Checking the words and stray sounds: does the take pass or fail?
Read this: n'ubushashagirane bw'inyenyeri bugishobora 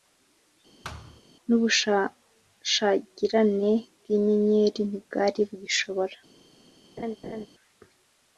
fail